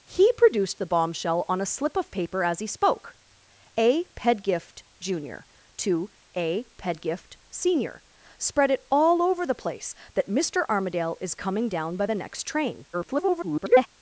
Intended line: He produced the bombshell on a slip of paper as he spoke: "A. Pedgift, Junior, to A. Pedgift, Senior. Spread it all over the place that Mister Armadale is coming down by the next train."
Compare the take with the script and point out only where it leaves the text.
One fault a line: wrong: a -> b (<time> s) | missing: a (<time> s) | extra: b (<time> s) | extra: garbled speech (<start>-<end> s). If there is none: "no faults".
extra: garbled speech (12.9-13.9 s)